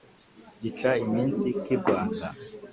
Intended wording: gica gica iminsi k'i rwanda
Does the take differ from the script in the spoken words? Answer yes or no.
yes